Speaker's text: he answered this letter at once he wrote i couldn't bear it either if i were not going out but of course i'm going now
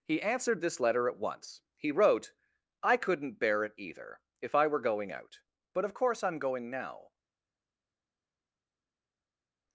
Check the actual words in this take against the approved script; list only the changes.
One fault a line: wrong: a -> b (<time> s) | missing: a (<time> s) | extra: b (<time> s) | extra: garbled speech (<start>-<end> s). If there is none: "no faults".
missing: not (4.8 s)